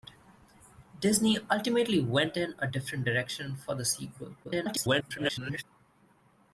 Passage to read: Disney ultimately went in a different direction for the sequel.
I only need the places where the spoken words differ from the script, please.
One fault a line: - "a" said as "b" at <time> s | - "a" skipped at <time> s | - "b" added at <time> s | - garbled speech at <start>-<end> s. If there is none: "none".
- garbled speech at 4.4-5.6 s